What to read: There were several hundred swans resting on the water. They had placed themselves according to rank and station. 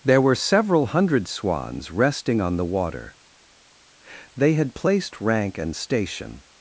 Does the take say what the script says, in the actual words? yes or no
no